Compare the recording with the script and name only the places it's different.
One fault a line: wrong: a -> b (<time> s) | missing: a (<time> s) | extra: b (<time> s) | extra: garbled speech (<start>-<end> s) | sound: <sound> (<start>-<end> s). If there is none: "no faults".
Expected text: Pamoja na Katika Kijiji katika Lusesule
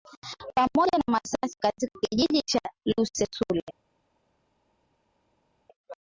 extra: Masasi (1.1 s)
wrong: katika -> cha (2.4 s)